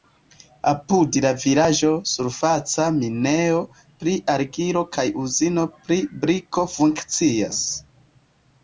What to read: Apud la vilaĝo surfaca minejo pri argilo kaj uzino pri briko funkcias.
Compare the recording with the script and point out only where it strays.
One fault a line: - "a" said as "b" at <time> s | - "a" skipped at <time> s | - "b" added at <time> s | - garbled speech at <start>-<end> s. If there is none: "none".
none